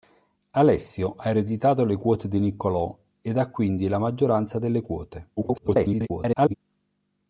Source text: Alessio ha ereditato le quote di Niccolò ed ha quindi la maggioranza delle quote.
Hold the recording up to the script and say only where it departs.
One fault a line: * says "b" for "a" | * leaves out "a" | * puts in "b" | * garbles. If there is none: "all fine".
* garbles